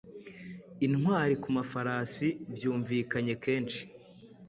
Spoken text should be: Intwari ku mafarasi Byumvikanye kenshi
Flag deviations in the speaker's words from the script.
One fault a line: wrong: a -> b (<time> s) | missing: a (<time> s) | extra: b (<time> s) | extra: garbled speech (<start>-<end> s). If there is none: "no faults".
no faults